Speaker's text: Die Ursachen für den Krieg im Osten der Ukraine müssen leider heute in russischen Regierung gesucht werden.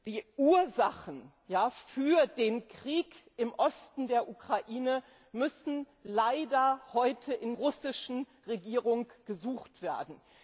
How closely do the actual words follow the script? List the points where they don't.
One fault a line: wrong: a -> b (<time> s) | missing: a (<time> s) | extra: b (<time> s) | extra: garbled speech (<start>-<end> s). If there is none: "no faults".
no faults